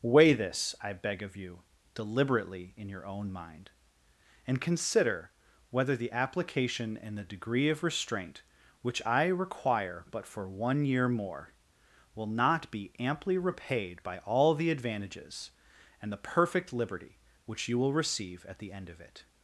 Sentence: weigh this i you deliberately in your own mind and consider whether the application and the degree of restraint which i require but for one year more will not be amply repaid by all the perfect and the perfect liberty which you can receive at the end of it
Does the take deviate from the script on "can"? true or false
true